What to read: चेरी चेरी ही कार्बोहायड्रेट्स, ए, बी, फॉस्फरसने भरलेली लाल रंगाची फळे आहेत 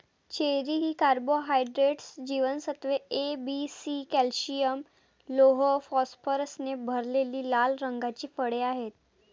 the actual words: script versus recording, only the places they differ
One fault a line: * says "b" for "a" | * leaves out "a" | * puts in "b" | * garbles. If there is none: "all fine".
* leaves out "चेरी"
* puts in "जीवनसत्त्वे"
* puts in "सी कॅल्शियम लोह"